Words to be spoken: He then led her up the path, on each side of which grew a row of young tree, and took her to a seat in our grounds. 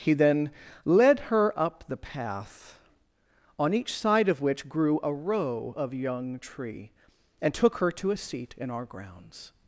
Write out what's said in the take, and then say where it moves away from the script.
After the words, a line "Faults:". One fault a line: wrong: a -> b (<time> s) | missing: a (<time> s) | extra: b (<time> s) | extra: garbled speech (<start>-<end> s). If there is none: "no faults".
He then led her up the path, on each side of which grew a row of young tree, and took her to a seat in our grounds.
Faults:
no faults